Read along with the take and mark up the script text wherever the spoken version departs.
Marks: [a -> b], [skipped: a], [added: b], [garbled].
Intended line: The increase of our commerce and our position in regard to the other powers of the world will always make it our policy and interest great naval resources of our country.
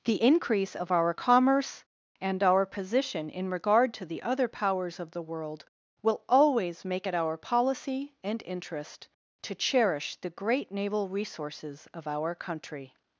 The increase of our commerce and our position in regard to the other powers of the world will always make it our policy and interest [added: to cherish the] great naval resources of our country.